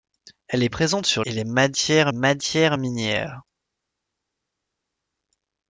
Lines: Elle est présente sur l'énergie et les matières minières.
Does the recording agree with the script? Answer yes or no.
no